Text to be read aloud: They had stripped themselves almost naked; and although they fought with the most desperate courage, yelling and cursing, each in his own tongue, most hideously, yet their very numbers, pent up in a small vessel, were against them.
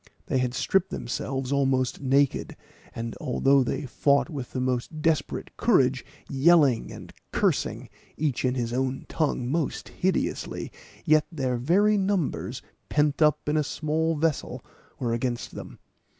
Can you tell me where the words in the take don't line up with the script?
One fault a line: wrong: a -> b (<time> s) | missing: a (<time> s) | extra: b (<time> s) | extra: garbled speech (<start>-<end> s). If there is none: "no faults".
no faults